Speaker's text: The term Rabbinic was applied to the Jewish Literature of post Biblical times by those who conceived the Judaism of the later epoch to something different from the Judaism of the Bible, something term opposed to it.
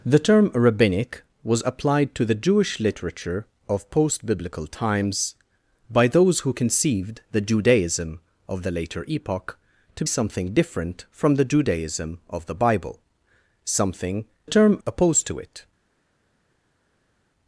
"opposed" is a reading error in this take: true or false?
false